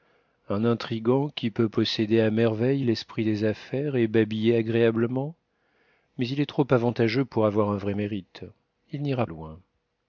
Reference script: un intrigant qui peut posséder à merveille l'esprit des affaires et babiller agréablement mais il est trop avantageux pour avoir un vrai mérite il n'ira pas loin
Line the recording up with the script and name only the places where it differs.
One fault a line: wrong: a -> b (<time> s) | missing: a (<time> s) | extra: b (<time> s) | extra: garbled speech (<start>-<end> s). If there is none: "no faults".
missing: pas (9.3 s)